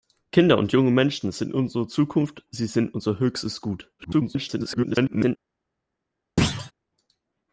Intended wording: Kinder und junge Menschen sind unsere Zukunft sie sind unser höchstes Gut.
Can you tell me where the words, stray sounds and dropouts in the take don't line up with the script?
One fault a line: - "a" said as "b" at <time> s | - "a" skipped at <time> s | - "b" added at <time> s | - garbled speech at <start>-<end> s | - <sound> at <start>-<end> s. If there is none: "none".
- garbled speech at 4.0-5.4 s
- thud at 6.4-6.7 s